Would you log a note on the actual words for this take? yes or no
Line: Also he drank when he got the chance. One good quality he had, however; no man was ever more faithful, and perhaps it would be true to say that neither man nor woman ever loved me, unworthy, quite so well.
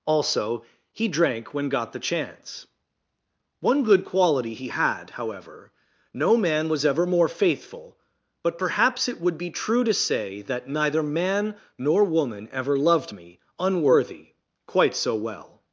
yes